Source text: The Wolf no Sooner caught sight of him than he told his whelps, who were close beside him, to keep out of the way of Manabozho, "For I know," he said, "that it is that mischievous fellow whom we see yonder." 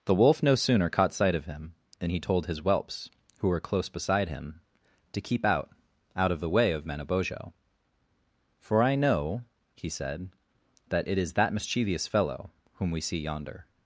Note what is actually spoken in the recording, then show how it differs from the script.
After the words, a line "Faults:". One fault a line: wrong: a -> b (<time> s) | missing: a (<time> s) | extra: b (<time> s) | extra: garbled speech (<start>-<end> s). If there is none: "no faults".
The Wolf no Sooner caught sight of him than he told his whelps, who were close beside him, to keep out out of the way of Manabozho, "For I know," he said, "that it is that mischievous fellow whom we see yonder."
Faults:
extra: out (6.2 s)